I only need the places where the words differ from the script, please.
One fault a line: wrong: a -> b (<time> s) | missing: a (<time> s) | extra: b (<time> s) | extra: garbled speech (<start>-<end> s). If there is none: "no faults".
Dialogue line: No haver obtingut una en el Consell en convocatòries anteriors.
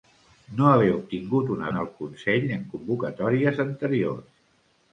no faults